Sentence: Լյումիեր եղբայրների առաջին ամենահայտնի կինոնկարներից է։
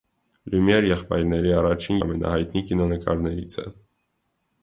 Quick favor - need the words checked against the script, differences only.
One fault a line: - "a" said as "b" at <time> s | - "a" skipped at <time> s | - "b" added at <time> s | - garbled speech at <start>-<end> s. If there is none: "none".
none